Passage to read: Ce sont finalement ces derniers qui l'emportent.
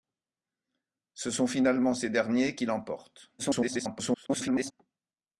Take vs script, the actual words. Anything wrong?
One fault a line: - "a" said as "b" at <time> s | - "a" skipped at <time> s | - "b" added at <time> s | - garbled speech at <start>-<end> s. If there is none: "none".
- garbled speech at 3.4-4.7 s